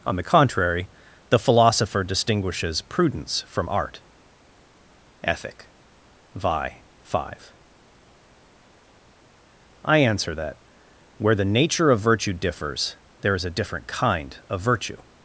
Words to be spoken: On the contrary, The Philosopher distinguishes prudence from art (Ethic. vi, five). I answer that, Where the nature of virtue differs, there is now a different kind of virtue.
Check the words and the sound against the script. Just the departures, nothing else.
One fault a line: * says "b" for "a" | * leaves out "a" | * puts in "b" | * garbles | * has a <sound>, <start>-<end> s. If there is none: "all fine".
* leaves out "now"